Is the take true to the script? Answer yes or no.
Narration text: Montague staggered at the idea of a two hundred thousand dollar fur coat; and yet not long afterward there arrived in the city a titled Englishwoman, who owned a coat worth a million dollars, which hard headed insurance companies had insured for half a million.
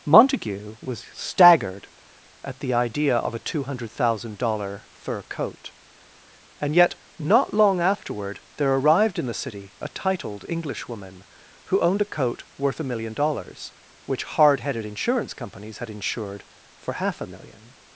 no